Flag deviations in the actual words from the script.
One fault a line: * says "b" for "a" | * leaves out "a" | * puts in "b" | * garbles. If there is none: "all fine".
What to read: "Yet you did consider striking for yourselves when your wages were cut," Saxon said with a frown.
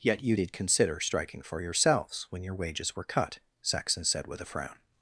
all fine